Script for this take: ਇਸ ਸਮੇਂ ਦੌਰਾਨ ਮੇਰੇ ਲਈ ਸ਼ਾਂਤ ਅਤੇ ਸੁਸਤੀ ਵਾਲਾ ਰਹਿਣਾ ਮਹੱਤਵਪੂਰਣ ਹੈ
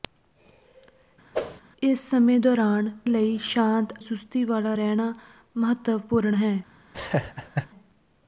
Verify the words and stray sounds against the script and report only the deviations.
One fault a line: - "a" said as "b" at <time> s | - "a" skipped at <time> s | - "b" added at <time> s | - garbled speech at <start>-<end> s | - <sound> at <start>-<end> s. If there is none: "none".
- whoosh at 1.3-1.6 s
- "ਮੇਰੇ" skipped at 2.9 s
- "ਅਤੇ" skipped at 3.9 s
- laugh at 6.9-7.7 s